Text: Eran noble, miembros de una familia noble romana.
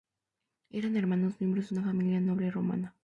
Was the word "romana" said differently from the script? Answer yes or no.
no